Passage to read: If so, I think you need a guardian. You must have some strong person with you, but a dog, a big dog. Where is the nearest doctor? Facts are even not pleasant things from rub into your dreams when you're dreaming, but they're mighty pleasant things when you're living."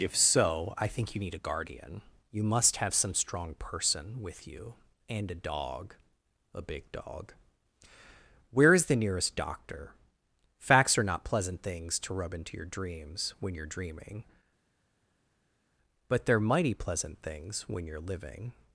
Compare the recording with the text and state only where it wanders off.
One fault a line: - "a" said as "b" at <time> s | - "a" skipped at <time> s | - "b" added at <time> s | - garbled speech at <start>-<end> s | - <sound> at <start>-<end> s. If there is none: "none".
- "but" said as "and" at 5.1 s
- "even" skipped at 11.0 s
- "from" said as "to" at 12.0 s